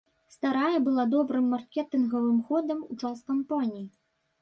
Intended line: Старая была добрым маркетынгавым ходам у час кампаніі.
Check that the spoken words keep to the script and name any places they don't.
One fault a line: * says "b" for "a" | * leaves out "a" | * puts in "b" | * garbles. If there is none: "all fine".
all fine